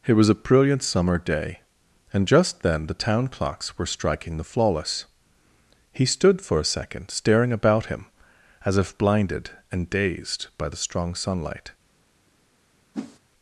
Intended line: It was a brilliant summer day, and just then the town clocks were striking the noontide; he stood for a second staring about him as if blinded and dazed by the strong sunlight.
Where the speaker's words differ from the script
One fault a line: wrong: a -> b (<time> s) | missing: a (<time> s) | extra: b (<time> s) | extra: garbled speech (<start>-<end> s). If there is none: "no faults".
wrong: noontide -> flawless (4.5 s)